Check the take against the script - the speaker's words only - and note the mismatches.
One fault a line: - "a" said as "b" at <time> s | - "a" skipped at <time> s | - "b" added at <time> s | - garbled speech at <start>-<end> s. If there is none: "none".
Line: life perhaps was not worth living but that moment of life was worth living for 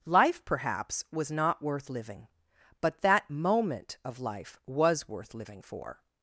none